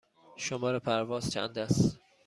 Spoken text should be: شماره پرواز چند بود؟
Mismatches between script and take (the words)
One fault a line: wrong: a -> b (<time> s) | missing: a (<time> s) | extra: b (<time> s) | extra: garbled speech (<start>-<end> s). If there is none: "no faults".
wrong: بود -> است (1.6 s)